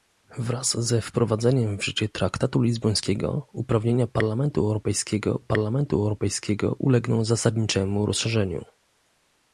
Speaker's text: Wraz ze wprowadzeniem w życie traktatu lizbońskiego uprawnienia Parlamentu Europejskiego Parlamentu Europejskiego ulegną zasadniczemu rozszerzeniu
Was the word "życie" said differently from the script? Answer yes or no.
no